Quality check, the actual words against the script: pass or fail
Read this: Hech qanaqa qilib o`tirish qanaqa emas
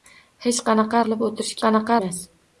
pass